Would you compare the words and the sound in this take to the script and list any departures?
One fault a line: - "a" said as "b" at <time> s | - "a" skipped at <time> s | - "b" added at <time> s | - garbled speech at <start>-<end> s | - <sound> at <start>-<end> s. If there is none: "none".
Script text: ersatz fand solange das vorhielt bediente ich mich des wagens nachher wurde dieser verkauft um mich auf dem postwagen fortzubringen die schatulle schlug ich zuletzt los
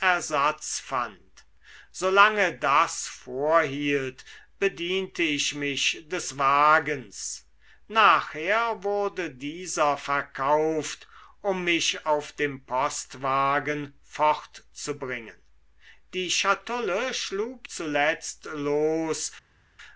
- "ich" skipped at 17.7 s